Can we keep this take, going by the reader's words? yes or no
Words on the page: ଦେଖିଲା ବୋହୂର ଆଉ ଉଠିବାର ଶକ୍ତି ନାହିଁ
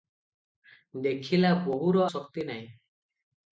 no